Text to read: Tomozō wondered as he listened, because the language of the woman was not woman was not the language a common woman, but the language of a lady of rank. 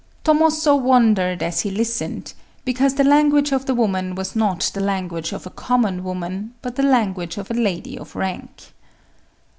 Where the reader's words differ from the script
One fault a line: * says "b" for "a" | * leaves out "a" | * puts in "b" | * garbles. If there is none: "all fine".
* leaves out "woman was not"
* puts in "of"